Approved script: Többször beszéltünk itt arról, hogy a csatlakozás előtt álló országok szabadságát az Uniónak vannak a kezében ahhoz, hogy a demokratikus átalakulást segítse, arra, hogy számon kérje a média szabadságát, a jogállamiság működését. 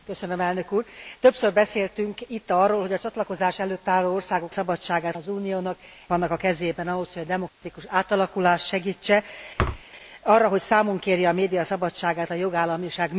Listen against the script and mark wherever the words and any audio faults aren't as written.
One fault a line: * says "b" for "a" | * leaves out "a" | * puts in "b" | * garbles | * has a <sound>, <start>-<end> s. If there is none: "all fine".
* has a dropout, 7.5-7.6 s
* has a thud, 9.6-9.8 s